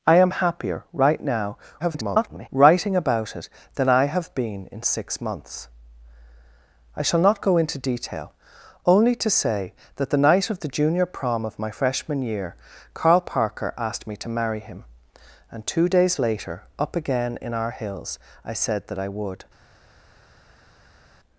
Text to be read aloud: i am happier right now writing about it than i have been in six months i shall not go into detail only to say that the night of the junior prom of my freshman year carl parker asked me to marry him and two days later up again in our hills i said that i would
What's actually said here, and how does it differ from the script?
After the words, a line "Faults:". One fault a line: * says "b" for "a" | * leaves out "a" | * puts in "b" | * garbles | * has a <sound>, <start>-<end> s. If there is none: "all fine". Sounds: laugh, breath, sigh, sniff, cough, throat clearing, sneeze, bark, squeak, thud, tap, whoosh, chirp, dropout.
i am happier right now [garbled] writing about it than i have been in six months i shall not go into detail only to say that the night of the junior prom of my freshman year carl parker asked me to marry him and two days later up again in our hills i said that i would
Faults:
* garbles